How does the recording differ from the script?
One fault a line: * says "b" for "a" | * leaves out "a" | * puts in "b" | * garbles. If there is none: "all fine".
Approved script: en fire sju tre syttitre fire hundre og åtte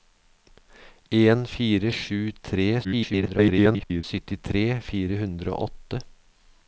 * garbles